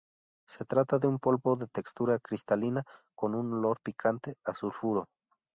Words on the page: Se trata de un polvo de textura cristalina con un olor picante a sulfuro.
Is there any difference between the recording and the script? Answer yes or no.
no